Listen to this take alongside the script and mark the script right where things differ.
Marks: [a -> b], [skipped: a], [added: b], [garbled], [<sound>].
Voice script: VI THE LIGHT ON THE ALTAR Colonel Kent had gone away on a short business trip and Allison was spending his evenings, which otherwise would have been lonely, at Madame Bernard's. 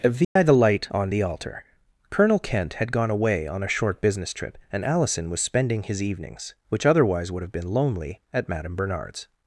VI [dropout] THE LIGHT ON THE ALTAR Colonel Kent had gone away on a short business trip and Allison was spending his evenings, which otherwise would have been lonely, at Madame Bernard's.